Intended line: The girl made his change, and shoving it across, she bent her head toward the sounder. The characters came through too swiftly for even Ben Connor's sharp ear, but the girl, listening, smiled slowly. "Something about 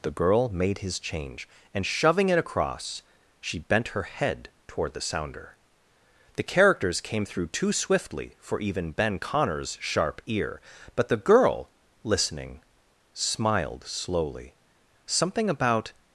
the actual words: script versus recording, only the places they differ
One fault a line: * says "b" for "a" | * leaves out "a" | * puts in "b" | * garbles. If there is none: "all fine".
all fine